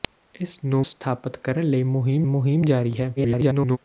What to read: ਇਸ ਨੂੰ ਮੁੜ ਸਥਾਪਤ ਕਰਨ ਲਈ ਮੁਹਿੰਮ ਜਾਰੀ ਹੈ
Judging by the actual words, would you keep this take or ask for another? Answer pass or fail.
fail